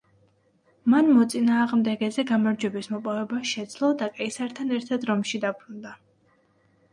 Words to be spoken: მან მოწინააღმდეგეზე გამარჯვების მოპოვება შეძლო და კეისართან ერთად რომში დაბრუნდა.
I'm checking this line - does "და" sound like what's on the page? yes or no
yes